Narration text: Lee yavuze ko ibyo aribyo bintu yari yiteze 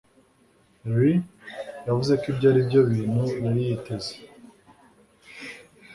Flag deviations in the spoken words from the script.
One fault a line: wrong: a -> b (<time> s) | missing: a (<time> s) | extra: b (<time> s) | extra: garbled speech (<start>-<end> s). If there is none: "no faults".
no faults